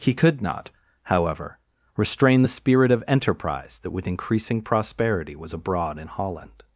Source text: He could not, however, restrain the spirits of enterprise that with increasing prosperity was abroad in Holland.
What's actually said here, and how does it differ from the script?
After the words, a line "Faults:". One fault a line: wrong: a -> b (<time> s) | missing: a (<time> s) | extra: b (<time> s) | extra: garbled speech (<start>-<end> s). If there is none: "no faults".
He could not, however, restrain the spirit of enterprise that with increasing prosperity was abroad in Holland.
Faults:
wrong: spirits -> spirit (2.5 s)